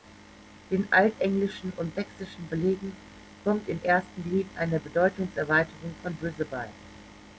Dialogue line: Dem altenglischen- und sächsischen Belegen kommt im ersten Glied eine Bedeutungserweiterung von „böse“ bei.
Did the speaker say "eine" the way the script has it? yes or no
yes